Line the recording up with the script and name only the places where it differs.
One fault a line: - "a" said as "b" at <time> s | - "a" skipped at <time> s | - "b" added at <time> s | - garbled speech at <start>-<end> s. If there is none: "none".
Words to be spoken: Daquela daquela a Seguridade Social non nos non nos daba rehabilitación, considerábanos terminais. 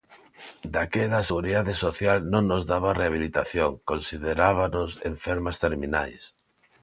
- "daquela" skipped at 1.2 s
- "non nos" skipped at 2.6 s
- "enfermas" added at 5.1 s